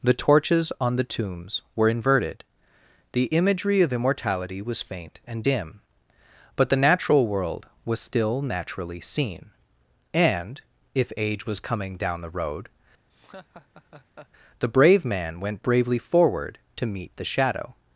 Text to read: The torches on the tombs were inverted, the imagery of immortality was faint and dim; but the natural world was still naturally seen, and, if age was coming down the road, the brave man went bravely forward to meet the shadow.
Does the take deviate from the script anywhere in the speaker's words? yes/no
no